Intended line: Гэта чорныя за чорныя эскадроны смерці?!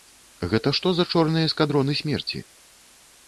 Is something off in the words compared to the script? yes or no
yes